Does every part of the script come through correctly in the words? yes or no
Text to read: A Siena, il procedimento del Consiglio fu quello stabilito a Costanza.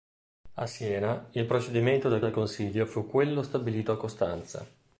no